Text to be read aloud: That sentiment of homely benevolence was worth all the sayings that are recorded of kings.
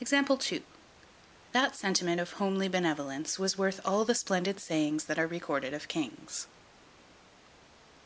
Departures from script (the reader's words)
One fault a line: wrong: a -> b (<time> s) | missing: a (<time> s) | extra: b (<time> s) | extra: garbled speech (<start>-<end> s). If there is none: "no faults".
extra: splendid (4.1 s)